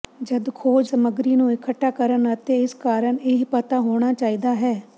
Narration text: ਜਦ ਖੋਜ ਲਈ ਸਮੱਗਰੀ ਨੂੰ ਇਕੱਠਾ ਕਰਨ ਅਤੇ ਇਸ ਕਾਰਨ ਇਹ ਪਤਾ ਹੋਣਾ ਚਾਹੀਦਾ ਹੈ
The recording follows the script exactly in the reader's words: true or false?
false